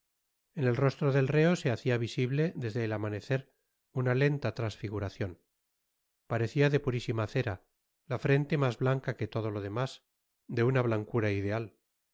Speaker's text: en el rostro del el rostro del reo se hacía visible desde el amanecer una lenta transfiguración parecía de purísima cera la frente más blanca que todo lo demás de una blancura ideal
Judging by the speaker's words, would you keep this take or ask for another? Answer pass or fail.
fail